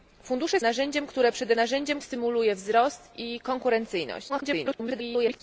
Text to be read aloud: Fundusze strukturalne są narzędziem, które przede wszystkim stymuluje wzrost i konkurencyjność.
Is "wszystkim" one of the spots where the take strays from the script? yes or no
yes